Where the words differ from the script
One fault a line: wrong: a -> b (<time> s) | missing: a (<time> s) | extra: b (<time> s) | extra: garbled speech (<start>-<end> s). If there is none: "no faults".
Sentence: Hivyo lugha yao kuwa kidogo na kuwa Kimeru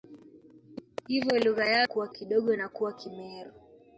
no faults